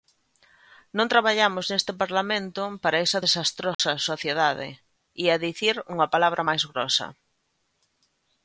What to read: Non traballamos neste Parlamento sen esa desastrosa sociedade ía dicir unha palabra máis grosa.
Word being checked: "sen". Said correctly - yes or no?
no